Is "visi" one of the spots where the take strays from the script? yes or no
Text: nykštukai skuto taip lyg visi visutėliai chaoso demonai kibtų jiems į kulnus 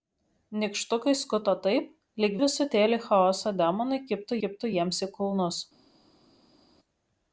yes